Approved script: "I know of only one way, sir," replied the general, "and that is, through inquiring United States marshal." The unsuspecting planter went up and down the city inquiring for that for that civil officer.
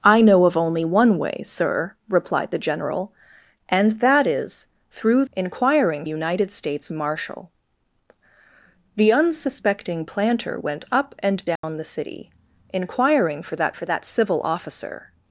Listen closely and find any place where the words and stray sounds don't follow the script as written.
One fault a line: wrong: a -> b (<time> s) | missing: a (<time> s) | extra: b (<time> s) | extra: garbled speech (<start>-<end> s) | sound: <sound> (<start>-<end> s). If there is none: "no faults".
sound: dropout (11.6-11.6 s)